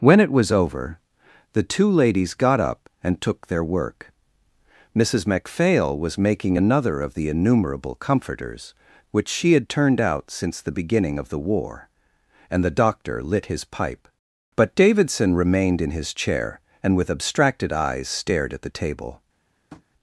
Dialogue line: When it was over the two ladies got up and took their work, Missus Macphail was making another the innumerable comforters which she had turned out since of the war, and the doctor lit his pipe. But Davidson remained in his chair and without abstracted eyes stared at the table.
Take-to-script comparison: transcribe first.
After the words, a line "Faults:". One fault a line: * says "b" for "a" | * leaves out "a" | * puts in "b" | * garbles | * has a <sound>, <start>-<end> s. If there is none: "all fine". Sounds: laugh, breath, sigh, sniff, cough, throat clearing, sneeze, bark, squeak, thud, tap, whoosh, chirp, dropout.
When it was over the two ladies got up and took their work, Missus Macphail was making another of the innumerable comforters which she had turned out since the beginning of the war, and the doctor lit his pipe. But Davidson remained in his chair and with abstracted eyes stared at the table.
Faults:
* puts in "of"
* puts in "the beginning"
* says "with" for "without"
* has a tap, 19.7-19.8 s